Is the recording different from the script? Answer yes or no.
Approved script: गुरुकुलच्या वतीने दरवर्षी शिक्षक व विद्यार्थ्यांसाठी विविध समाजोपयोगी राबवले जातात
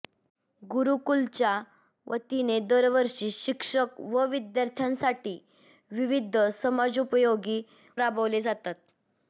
no